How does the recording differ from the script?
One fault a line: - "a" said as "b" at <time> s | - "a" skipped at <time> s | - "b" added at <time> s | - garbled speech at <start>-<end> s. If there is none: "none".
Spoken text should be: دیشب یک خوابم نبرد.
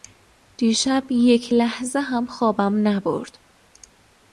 - "لحظه هم" added at 1.5 s